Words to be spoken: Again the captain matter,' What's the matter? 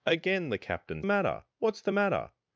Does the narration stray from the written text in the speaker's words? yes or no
no